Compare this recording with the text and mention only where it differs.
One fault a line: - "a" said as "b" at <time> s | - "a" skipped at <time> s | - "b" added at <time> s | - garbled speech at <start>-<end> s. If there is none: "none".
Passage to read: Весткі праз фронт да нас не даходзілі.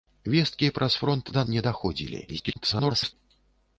- "нас" skipped at 1.4 s
- garbled speech at 2.3-3.1 s